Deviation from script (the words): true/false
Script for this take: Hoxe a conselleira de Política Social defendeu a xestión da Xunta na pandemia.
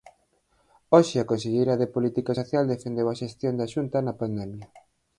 false